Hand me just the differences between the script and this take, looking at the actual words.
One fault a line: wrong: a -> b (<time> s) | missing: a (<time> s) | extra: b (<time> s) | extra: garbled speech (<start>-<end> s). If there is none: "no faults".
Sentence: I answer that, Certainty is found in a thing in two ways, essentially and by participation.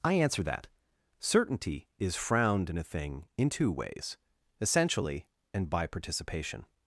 wrong: found -> frowned (2.1 s)